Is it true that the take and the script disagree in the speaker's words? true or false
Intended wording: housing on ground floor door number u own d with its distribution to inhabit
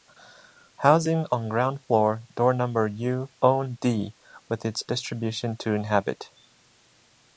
false